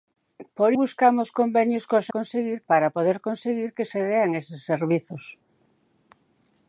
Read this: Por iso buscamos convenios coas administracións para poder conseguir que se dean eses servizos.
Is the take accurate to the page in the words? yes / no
no